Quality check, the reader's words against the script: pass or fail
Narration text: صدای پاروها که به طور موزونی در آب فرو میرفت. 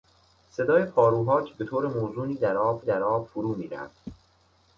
fail